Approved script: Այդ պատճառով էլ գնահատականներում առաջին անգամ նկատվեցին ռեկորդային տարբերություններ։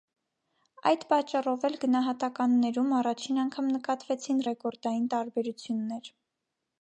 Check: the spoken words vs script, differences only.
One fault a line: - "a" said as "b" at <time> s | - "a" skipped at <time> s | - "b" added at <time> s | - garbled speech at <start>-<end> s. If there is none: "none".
none